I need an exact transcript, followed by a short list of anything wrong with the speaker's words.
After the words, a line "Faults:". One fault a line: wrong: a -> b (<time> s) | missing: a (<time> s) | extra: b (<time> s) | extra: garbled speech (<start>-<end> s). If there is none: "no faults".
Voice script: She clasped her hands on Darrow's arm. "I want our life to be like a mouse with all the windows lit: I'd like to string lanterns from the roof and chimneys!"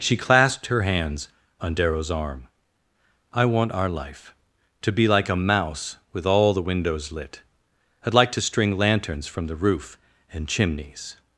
She clasped her hands on Darrow's arm. "I want our life to be like a mouse with all the windows lit: I'd like to string lanterns from the roof and chimneys!"
Faults:
no faults